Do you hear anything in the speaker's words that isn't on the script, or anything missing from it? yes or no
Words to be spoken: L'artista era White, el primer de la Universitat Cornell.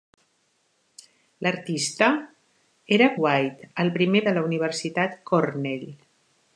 no